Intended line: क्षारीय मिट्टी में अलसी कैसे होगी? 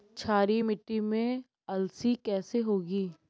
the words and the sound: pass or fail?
pass